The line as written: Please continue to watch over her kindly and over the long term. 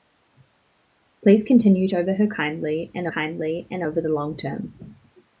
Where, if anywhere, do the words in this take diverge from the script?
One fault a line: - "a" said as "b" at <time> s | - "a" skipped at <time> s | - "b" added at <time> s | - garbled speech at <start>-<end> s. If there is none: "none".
- "to watch over her" said as "over her kindly and" at 1.9 s